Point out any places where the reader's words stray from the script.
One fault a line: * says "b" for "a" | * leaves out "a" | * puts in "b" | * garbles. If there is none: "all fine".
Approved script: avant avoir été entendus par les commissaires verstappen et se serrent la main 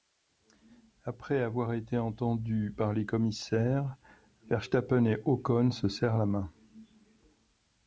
* says "après" for "avant"
* puts in "ocon"